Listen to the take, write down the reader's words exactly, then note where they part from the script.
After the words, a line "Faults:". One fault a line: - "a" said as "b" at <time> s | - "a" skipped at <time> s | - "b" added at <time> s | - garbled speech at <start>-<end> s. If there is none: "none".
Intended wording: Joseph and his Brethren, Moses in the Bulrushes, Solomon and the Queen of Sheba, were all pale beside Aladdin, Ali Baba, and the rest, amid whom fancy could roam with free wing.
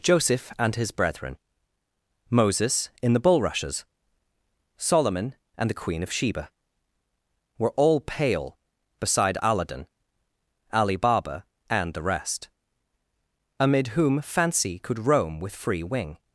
Joseph and his Brethren, Moses in the Bulrushes, Solomon and the Queen of Sheba, were all pale beside Aladdin, Ali Baba, and the rest, amid whom fancy could roam with free wing.
Faults:
none